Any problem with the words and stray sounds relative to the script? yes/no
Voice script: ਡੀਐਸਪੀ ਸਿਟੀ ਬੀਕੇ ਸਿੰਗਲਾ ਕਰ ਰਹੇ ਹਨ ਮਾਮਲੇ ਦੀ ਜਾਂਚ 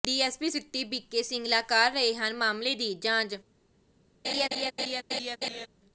yes